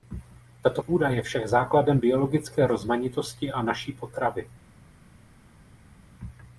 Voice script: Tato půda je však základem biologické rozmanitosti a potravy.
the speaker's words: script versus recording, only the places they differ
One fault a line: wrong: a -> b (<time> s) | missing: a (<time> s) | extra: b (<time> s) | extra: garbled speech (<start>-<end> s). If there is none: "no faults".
extra: naší (3.6 s)